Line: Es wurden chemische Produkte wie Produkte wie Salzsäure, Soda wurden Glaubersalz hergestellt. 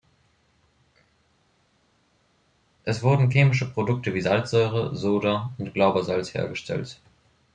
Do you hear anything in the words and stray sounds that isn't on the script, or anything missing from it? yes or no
yes